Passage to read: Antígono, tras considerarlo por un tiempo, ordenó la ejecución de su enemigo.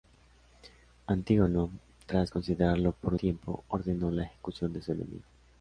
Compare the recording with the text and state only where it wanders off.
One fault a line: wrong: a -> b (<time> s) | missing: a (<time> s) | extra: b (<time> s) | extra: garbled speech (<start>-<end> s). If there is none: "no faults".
missing: un (3.1 s)